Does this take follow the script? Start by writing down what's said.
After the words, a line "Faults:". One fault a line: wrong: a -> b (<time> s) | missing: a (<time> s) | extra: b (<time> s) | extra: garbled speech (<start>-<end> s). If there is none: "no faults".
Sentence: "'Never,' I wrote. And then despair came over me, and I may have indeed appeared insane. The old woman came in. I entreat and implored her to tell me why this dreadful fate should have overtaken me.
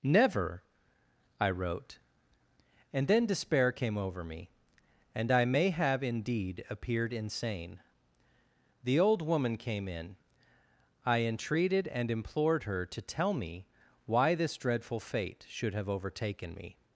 "'Never,' I wrote. And then despair came over me, and I may have indeed appeared insane. The old woman came in. I entreated and implored her to tell me why this dreadful fate should have overtaken me.
Faults:
wrong: entreat -> entreated (11.2 s)